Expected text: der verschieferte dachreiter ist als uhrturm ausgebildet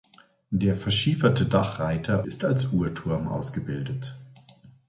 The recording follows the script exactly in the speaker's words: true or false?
true